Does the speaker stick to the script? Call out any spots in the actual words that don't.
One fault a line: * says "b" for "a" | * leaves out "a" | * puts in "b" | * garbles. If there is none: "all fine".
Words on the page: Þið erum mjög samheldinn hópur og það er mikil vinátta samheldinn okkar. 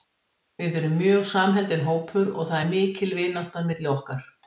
* says "Við" for "Þið"
* says "milli" for "samheldinn"